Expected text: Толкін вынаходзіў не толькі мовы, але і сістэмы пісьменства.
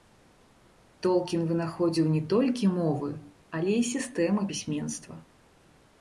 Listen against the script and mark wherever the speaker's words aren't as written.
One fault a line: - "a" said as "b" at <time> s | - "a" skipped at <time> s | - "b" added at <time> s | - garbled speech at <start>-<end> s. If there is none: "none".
none